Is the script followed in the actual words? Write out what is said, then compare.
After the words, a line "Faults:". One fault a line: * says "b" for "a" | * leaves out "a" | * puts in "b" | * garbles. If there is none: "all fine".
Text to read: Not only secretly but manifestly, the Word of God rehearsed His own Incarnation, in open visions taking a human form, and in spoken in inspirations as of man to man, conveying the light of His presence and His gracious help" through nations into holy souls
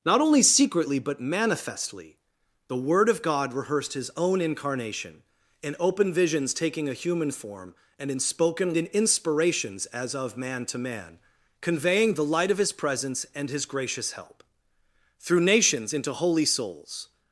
Not only secretly but manifestly, the Word of God rehearsed His own Incarnation, in open visions taking a human form, and in spoken in inspirations as of man to man, conveying the light of His presence and His gracious help" through nations into holy souls
Faults:
all fine